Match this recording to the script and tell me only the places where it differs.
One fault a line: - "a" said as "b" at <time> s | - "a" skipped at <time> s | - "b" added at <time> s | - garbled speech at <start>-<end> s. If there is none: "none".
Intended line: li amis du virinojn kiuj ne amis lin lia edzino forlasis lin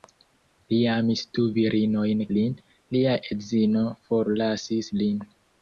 - "kiuj ne amis" skipped at 2.2 s